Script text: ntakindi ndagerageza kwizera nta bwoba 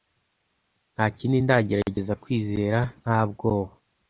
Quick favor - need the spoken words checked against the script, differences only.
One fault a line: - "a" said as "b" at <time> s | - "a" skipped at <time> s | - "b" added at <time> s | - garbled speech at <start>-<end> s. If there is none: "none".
none